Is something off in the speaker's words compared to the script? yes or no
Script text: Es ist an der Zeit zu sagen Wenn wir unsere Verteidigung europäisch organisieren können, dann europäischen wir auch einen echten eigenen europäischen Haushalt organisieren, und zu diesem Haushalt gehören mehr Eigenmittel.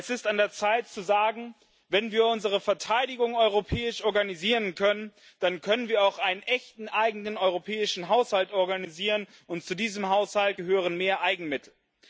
yes